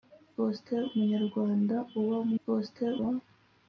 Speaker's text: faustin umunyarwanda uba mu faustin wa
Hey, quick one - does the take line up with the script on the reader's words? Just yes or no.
yes